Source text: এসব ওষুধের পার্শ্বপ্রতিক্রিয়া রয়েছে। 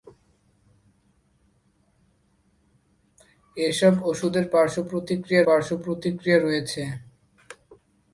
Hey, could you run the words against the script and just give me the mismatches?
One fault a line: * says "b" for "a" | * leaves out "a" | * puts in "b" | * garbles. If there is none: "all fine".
* puts in "পার্শ্বপ্রতিক্রিয়া"